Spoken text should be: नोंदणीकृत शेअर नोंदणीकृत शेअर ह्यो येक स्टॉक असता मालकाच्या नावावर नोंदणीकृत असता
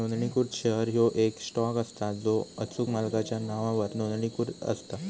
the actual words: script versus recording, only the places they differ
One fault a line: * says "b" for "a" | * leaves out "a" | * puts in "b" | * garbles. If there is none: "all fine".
* leaves out "नोंदणीकृत शेअर"
* puts in "जो अचूक"